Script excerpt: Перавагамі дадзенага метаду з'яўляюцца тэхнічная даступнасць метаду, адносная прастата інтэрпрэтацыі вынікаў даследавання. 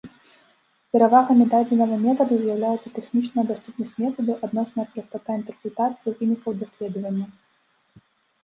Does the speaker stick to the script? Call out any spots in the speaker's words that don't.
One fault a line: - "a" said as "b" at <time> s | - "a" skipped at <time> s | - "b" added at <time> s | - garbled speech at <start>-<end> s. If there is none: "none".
none